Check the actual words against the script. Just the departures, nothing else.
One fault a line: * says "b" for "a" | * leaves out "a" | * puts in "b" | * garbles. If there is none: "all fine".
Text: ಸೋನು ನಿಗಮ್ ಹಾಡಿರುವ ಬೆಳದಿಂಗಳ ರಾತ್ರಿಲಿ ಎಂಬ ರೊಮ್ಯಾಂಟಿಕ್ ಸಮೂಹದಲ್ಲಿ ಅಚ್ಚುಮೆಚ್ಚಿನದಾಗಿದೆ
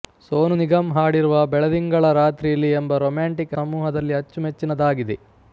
all fine